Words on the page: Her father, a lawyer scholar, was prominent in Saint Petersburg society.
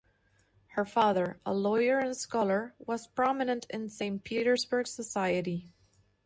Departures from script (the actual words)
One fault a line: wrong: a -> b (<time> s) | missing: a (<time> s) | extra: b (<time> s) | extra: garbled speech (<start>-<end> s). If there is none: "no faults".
extra: and (2.0 s)